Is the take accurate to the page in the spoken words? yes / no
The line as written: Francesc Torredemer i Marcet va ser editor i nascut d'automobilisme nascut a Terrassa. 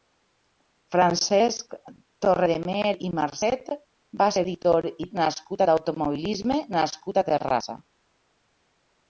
yes